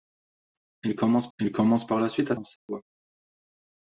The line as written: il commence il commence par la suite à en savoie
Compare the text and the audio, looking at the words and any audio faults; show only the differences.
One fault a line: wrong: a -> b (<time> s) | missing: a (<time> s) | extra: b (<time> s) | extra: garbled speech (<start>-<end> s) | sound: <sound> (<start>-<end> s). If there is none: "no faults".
sound: dropout (2.6-2.7 s)